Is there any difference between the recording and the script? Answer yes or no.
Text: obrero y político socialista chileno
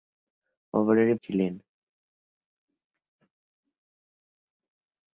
yes